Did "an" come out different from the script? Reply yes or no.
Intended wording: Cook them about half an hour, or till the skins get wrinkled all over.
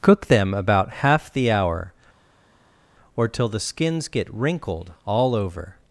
yes